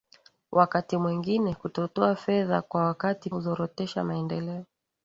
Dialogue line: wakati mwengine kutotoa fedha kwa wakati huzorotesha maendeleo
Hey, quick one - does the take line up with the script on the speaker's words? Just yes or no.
yes